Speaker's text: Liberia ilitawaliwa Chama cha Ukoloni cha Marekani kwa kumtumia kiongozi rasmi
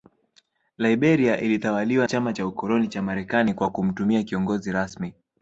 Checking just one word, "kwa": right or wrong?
right